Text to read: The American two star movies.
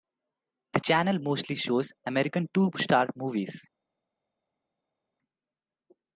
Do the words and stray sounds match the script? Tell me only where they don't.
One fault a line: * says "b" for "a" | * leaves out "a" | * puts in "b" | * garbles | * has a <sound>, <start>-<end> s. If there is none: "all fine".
* puts in "channel mostly shows"